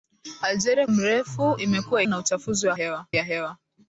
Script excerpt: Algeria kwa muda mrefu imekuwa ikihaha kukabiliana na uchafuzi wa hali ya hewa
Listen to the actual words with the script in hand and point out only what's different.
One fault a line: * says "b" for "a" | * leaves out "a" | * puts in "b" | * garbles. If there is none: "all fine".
* leaves out "kwa muda"
* leaves out "ikihaha kukabiliana"
* says "hewa" for "hali"